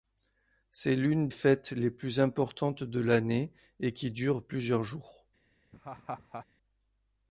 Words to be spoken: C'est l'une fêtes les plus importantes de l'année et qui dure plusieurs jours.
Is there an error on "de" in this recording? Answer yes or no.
no